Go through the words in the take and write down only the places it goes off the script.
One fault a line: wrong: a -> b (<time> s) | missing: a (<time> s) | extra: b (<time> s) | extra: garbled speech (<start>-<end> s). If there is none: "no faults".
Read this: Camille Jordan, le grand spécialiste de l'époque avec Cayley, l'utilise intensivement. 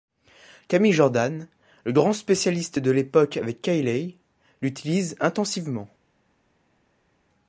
no faults